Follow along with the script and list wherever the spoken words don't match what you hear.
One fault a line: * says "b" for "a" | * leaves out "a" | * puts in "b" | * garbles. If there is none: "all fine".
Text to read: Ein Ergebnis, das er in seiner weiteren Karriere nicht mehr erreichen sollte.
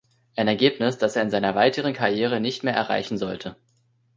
all fine